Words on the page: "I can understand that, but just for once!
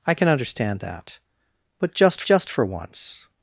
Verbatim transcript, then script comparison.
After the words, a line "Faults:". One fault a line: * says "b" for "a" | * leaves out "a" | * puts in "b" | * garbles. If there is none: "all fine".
"I can understand that, but just just for once!
Faults:
* puts in "just"